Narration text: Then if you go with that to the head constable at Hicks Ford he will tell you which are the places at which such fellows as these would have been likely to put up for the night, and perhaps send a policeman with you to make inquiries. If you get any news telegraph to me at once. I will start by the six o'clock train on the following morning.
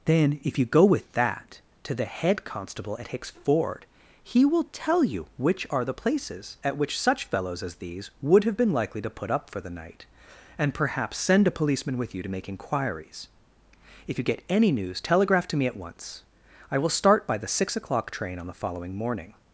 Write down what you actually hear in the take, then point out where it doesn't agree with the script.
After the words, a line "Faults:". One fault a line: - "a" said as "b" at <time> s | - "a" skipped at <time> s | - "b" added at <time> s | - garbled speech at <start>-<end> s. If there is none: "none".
Then if you go with that to the head constable at Hicks Ford he will tell you which are the places at which such fellows as these would have been likely to put up for the night, and perhaps send a policeman with you to make inquiries. If you get any news telegraph to me at once. I will start by the six o'clock train on the following morning.
Faults:
none